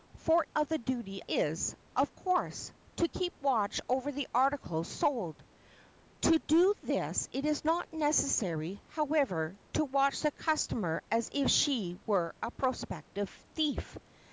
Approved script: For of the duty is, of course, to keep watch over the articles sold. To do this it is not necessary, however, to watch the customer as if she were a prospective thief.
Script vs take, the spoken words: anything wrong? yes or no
no